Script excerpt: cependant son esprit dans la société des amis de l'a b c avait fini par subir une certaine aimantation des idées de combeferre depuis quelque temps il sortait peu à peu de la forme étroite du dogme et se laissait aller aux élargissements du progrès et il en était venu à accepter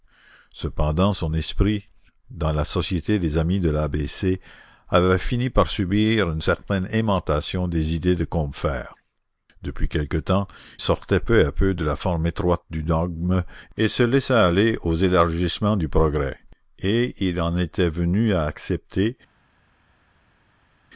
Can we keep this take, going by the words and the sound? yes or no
no